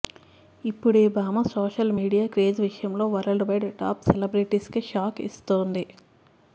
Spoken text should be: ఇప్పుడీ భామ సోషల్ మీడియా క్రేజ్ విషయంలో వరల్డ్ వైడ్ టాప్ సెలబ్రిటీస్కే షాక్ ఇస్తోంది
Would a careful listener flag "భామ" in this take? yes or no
no